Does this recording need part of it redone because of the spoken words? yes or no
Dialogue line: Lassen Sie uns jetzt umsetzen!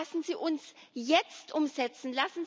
no